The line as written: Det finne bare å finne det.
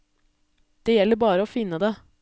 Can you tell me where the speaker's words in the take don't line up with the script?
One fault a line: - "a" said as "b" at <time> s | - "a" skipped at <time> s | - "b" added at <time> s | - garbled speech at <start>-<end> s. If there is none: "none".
- "finne" said as "gjelder" at 1.0 s